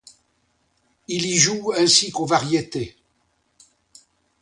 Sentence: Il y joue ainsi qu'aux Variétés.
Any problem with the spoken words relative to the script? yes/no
no